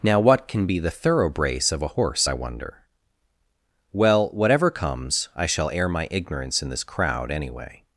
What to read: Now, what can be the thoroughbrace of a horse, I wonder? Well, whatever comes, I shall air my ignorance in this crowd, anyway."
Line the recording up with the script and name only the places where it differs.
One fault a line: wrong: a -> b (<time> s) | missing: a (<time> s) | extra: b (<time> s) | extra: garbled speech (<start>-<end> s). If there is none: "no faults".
no faults